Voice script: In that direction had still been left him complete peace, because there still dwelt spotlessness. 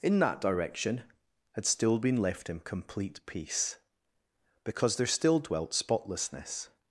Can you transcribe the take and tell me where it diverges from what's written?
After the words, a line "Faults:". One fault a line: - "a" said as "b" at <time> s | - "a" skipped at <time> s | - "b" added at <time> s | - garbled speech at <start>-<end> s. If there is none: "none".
In that direction had still been left him complete peace, because there still dwelt spotlessness.
Faults:
none